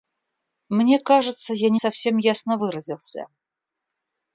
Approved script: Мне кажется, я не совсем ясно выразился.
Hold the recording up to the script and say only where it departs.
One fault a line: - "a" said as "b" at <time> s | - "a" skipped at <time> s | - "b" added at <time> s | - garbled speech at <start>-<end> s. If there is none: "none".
none